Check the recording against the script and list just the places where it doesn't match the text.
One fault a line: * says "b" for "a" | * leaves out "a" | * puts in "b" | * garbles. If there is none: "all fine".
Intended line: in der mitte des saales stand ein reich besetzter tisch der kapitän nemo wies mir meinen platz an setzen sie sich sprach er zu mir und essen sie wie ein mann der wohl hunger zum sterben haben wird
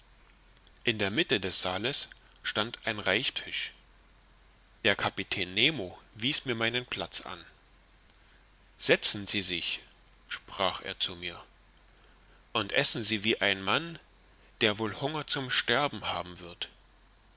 * leaves out "besetzter"